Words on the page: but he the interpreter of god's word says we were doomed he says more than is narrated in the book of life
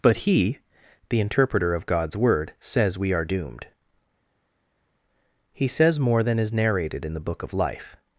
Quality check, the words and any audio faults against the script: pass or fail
fail